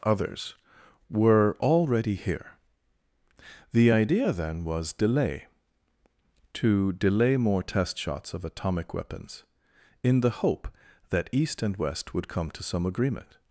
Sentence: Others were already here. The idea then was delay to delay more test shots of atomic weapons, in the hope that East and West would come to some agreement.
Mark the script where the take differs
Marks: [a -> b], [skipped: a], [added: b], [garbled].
Others were already here. The idea then was delay to delay more test shots of atomic weapons, in the hope that East and West would come to some agreement.